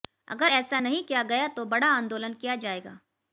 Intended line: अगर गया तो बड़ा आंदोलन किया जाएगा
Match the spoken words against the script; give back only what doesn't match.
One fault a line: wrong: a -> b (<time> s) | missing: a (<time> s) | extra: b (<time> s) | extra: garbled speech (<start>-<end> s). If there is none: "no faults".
extra: ऐसा नहीं किया (0.5 s)